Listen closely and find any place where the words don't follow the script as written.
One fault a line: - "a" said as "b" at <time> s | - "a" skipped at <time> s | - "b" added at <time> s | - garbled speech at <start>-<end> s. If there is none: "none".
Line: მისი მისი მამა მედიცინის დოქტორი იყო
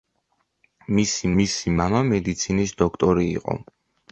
none